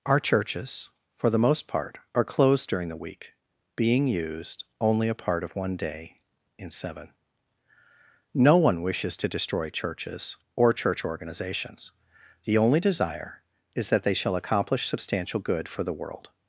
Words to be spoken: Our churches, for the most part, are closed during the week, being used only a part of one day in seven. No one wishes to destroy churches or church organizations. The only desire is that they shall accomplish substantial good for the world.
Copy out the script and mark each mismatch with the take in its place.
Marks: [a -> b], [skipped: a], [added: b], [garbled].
Our churches, for the most part, are closed during the week, being used only a part of one day in seven. No one wishes to destroy churches or church organizations. The only desire is that they shall accomplish substantial good for the world.